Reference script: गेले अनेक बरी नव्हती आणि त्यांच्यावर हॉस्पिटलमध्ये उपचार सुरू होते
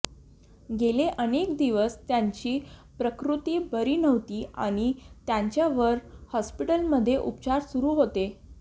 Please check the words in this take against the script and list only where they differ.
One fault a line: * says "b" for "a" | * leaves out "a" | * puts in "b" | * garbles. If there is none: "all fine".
* puts in "दिवस त्यांची प्रकृती"